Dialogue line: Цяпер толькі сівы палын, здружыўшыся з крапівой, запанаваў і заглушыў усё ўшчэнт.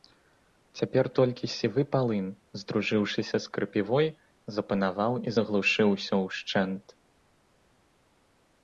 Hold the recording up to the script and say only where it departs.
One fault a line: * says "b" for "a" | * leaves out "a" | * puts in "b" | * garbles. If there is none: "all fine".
all fine